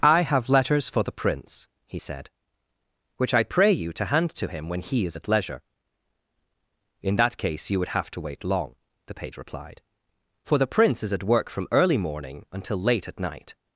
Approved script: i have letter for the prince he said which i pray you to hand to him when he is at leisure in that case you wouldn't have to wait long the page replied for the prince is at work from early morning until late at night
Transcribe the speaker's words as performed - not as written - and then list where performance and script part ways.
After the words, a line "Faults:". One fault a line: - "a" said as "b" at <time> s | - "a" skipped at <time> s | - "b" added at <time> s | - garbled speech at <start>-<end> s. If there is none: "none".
i have letters for the prince he said which i pray you to hand to him when he is at leisure in that case you would have to wait long the page replied for the prince is at work from early morning until late at night
Faults:
- "letter" said as "letters" at 0.5 s
- "wouldn't" said as "would" at 7.8 s